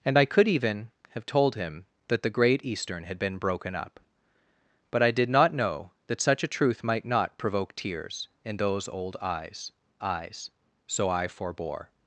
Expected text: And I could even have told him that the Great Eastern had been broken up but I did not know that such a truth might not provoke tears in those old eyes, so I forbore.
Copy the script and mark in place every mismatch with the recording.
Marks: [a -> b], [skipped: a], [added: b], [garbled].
And I could even have told him that the Great Eastern had been broken up but I did not know that such a truth might not provoke tears in those old eyes, [added: eyes] so I forbore.